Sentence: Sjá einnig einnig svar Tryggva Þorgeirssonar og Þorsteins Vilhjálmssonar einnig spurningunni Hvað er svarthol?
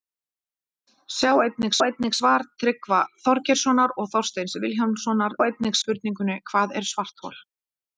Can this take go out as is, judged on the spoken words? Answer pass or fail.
pass